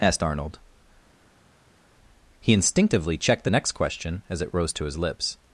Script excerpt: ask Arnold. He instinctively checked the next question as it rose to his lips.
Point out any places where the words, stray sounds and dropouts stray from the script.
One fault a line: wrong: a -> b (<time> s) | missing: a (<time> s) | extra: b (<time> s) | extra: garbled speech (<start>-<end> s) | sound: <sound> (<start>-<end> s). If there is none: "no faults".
wrong: ask -> asked (0.0 s)